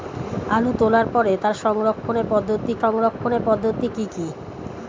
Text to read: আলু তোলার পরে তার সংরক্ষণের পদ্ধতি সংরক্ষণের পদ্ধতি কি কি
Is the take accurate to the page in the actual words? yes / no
yes